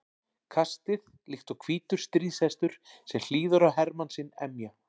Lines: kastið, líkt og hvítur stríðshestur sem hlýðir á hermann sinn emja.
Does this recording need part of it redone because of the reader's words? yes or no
no